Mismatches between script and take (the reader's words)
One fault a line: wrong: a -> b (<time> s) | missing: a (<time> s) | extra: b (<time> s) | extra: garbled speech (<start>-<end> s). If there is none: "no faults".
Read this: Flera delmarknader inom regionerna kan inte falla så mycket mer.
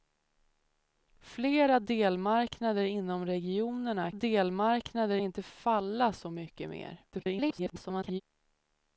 wrong: kan -> delmarknader (4.1 s)
extra: garbled speech (7.1-8.2 s)